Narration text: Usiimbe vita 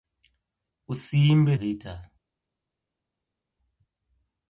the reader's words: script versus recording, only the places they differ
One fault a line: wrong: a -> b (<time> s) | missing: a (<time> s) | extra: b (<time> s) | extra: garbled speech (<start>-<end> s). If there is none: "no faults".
no faults